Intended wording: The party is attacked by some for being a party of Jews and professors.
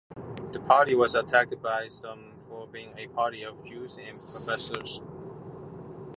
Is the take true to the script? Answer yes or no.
no